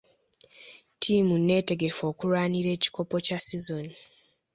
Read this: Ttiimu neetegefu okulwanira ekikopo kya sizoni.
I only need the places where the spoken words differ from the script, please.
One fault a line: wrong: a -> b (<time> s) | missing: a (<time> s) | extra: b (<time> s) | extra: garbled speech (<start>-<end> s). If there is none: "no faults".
no faults